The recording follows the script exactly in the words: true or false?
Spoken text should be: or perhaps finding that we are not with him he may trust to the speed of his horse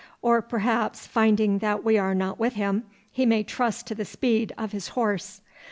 true